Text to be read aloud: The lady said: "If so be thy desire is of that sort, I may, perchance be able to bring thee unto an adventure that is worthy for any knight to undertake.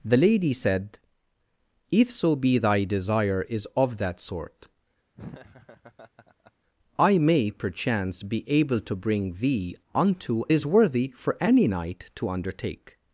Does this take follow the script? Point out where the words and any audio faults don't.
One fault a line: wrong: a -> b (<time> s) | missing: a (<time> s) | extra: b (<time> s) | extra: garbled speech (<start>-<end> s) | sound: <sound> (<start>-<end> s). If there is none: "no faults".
sound: laugh (5.2-6.5 s)
missing: an adventure that (10.4 s)